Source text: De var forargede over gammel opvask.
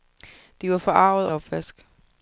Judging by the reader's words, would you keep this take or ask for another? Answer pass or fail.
fail